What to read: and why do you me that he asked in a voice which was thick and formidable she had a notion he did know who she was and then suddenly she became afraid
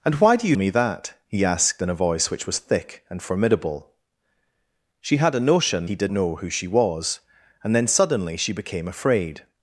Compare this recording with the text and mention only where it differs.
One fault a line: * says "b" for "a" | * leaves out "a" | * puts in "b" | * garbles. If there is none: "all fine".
all fine